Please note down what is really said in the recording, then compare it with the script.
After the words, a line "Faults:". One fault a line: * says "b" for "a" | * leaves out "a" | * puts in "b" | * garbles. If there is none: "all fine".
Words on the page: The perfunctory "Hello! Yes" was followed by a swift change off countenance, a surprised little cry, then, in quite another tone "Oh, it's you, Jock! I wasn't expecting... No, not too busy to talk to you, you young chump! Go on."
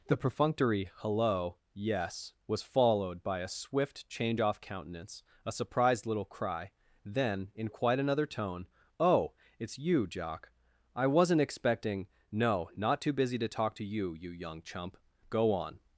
The perfunctory "Hello! Yes" was followed by a swift change off countenance, a surprised little cry, then, in quite another tone "Oh, it's you, Jock! I wasn't expecting... No, not too busy to talk to you, you young chump! Go on."
Faults:
all fine